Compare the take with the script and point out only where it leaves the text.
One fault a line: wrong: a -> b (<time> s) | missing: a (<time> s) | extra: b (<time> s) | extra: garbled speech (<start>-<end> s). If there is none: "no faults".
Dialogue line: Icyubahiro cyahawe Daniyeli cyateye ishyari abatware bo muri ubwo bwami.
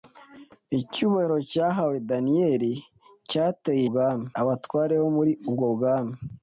wrong: ishyari -> bwami (3.9 s)